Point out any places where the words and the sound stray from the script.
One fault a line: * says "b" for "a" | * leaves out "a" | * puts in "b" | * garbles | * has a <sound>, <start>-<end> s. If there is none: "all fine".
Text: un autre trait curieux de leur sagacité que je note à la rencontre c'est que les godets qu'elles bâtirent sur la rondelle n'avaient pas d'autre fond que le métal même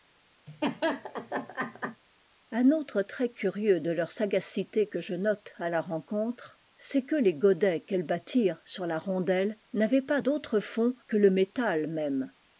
* has a laugh, 0.5-2.0 s